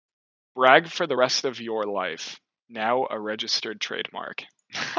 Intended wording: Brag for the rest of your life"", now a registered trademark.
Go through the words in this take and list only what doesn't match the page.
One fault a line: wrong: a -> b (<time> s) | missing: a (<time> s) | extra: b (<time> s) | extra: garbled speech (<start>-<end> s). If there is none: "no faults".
no faults